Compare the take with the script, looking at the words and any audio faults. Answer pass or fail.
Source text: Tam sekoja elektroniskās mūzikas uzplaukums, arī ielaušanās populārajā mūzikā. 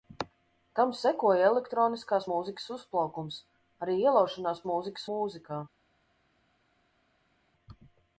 fail